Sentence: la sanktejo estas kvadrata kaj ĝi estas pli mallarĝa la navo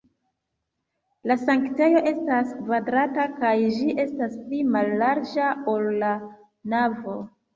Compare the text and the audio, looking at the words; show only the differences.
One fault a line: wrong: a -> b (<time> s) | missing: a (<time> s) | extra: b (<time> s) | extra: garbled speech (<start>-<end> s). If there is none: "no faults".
extra: ol (5.7 s)